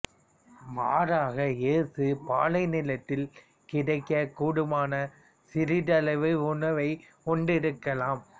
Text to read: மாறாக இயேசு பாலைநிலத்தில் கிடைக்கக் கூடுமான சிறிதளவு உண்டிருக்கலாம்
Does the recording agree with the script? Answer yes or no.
no